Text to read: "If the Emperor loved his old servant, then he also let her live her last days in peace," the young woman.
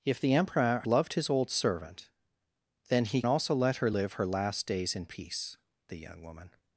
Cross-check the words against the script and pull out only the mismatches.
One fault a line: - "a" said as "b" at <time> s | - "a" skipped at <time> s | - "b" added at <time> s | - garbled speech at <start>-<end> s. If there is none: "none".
none